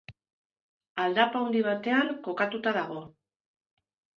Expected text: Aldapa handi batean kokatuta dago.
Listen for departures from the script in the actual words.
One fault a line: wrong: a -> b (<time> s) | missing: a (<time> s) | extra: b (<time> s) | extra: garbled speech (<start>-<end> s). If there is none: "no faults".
no faults